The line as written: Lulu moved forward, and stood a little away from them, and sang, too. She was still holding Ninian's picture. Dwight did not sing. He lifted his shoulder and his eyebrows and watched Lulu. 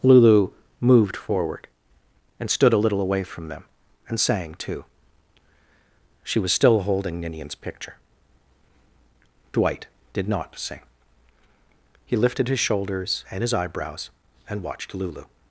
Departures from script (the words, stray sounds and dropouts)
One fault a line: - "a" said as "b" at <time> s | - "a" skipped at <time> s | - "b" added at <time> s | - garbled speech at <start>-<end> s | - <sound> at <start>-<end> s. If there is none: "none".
- "shoulder" said as "shoulders" at 12.6 s